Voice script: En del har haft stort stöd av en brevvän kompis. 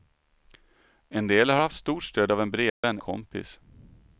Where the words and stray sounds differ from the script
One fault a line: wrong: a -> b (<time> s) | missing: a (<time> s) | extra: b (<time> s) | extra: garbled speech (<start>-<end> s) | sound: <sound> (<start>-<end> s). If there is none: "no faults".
sound: dropout (2.7-2.8 s)